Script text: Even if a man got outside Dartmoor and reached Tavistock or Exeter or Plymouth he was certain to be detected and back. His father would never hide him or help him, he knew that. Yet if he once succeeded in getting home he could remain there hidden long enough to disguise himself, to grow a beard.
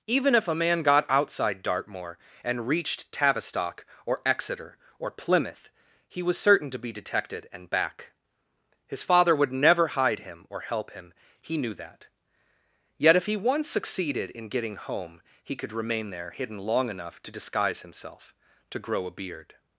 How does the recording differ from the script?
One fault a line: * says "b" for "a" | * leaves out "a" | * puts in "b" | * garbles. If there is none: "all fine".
all fine